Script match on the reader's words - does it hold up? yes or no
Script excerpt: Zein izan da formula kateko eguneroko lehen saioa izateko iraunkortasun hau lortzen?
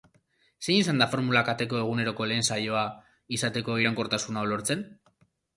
yes